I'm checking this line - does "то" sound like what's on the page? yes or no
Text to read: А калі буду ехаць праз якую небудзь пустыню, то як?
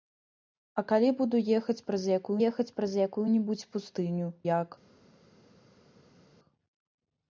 no